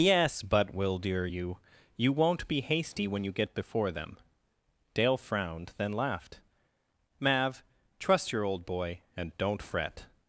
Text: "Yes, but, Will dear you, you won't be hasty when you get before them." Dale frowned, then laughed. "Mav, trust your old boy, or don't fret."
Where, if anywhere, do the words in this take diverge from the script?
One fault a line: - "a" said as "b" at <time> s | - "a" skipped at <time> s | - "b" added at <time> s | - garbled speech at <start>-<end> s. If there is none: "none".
- "or" said as "and" at 9.2 s